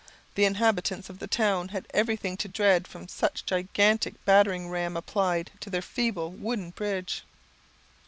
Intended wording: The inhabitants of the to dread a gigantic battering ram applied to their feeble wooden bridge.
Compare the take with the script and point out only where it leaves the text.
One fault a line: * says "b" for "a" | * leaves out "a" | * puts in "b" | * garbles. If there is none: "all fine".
* puts in "town had everything"
* puts in "from such"